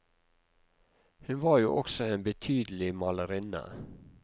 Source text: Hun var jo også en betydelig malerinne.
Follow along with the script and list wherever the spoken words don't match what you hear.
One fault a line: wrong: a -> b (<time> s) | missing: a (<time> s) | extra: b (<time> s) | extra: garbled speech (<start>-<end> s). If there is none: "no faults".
no faults